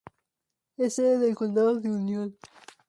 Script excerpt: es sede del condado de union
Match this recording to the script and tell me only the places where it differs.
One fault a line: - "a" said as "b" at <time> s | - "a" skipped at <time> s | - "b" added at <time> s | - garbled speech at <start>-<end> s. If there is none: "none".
none